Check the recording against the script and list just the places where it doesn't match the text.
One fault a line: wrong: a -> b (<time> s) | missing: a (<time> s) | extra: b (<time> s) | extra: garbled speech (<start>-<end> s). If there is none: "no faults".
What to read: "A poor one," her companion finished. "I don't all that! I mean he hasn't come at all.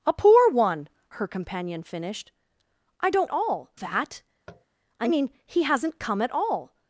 no faults